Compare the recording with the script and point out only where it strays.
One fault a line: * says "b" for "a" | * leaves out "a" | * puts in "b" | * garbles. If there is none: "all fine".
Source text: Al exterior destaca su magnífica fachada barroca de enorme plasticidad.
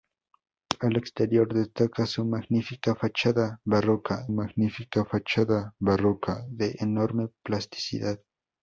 * puts in "magnífica fachada barroca"